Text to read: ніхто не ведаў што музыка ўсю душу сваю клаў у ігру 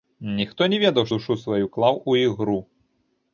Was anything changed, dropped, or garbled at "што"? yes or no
yes